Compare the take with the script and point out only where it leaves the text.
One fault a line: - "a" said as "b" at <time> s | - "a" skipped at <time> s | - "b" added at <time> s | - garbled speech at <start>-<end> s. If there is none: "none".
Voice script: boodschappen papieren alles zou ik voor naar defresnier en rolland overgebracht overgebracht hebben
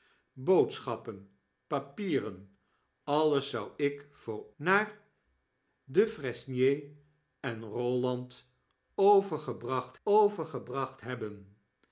none